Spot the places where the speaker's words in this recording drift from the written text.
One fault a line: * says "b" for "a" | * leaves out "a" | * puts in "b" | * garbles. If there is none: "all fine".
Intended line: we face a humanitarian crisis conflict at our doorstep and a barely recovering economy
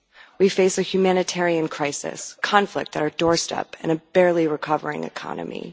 all fine